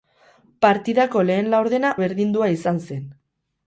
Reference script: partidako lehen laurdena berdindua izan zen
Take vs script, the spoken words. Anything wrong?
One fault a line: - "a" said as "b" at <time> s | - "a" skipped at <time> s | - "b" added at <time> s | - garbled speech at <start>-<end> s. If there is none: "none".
none